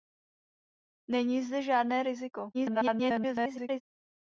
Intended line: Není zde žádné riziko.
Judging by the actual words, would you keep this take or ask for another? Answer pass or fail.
fail